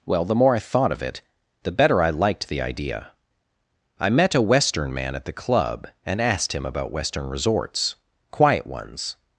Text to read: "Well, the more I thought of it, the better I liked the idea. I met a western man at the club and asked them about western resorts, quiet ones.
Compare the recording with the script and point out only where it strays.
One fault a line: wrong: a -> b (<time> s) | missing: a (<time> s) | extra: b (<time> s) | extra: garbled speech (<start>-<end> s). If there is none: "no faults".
wrong: them -> him (6.5 s)